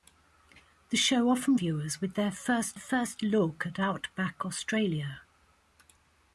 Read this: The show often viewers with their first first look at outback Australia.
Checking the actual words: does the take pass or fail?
pass